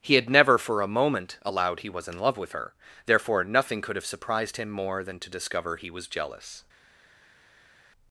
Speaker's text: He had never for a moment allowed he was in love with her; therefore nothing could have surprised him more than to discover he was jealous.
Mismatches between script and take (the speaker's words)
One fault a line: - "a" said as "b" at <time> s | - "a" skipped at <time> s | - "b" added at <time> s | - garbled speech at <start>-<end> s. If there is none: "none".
none